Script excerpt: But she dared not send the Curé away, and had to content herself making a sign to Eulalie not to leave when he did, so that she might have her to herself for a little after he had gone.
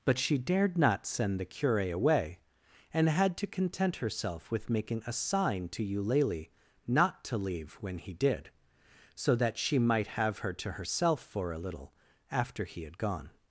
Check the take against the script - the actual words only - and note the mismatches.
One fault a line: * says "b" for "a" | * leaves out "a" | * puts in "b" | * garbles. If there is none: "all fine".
* puts in "with"